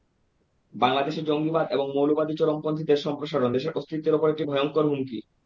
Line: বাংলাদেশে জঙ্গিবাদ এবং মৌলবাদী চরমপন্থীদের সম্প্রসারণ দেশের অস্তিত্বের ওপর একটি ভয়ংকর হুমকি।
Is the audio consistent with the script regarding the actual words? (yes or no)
yes